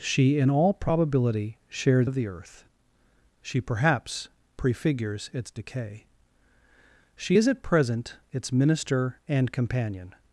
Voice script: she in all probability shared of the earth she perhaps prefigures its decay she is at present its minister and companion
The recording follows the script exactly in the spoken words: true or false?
true